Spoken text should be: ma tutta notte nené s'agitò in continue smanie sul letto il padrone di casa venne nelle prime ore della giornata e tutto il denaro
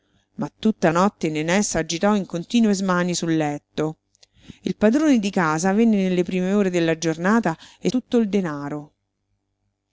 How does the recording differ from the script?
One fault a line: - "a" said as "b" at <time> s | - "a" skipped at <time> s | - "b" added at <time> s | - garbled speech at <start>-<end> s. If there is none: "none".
none